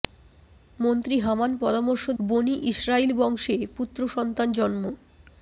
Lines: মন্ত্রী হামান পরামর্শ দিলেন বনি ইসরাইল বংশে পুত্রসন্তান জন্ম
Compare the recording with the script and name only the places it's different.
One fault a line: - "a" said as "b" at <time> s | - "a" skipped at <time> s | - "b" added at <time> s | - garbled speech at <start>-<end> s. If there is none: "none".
- "দিলেন" skipped at 2.0 s